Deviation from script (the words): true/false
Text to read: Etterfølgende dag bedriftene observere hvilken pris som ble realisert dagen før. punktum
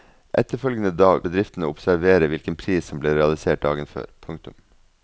false